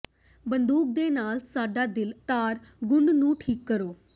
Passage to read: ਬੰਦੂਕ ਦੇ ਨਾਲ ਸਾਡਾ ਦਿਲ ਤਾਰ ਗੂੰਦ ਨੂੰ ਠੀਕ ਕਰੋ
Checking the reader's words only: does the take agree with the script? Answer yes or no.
yes